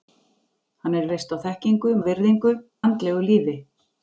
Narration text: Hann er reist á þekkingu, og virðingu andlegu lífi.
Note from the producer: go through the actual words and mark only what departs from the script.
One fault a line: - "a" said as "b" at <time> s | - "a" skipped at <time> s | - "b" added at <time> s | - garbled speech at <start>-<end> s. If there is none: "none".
none